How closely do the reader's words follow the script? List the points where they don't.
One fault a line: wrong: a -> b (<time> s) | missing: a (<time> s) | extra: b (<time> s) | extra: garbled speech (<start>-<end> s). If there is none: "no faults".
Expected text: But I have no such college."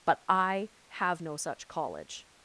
no faults